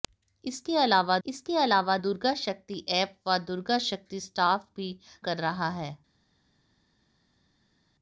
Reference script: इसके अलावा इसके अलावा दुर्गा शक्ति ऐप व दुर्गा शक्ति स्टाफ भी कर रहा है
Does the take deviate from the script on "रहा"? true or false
false